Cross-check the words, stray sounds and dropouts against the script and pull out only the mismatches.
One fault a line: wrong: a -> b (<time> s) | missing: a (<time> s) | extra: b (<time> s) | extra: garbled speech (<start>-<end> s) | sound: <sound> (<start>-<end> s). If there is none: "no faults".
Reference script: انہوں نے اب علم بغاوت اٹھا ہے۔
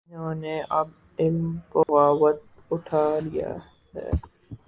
sound: dropout (1.8-1.9 s)
extra: لیا (3.2 s)